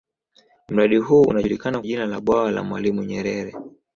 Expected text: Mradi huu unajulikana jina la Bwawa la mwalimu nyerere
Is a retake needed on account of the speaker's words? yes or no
no